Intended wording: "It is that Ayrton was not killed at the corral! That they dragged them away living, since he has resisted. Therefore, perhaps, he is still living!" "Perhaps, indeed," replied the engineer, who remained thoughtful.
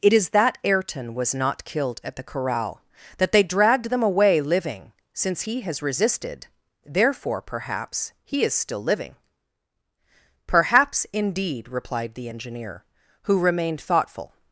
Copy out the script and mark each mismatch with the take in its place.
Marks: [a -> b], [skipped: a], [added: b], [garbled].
"It is that Ayrton was not killed at the corral! That they dragged them away living, since he has resisted. Therefore, perhaps, he is still living!" "Perhaps, indeed," replied the engineer, who remained thoughtful.